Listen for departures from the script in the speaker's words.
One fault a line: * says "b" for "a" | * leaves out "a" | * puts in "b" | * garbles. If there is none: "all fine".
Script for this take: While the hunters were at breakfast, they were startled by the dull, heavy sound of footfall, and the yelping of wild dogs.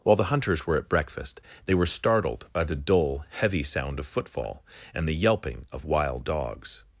all fine